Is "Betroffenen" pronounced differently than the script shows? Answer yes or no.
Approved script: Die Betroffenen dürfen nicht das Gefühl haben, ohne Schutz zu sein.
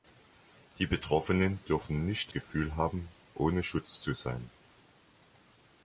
no